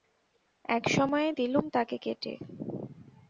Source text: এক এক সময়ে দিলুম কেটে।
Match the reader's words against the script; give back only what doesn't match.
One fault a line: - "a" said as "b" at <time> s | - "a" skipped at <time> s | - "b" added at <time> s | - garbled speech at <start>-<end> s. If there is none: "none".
- "এক" skipped at 0.8 s
- "তাকে" added at 1.7 s